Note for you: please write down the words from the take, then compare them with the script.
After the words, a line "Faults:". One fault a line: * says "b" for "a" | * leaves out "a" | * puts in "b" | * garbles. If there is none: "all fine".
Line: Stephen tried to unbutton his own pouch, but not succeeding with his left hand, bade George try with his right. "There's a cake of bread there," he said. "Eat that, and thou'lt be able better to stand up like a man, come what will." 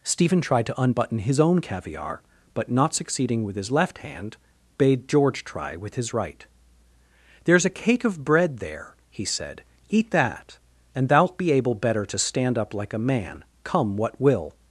Stephen tried to unbutton his own caviar, but not succeeding with his left hand, bade George try with his right. "There's a cake of bread there," he said. "Eat that, and thou'lt be able better to stand up like a man, come what will."
Faults:
* says "caviar" for "pouch"